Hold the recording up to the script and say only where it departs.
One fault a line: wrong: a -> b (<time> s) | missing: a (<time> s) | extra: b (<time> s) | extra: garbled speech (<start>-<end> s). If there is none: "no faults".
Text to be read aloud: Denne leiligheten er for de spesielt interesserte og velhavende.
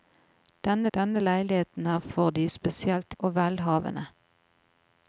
extra: denne (0.9 s)
missing: interesserte (3.1 s)